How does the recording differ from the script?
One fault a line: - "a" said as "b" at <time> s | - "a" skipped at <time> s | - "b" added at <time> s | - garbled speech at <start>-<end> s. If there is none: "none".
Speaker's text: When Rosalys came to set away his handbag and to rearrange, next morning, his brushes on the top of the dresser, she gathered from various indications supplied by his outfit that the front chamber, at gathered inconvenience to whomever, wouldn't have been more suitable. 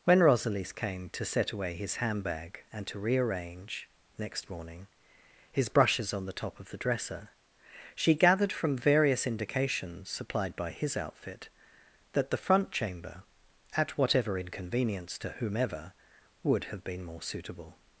- "gathered" said as "whatever" at 13.9 s
- "wouldn't" said as "would" at 16.4 s